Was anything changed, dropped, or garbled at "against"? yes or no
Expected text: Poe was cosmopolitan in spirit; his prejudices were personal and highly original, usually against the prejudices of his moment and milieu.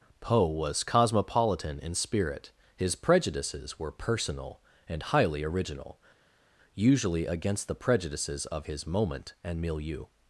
no